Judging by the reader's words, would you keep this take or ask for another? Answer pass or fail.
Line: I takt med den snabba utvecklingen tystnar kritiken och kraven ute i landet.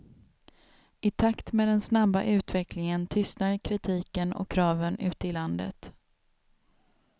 pass